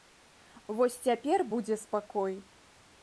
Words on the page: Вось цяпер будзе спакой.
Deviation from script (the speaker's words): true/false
false